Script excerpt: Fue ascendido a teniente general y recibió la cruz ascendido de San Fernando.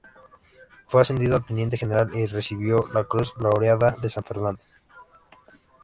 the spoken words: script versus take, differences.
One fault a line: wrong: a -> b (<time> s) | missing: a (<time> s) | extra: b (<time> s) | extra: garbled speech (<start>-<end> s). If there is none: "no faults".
wrong: ascendido -> laureada (3.4 s)